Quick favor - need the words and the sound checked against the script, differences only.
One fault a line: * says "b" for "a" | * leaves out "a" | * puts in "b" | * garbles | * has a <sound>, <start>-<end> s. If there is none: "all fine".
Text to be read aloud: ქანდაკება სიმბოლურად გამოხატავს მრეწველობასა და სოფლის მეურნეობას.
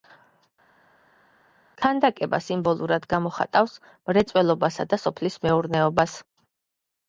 all fine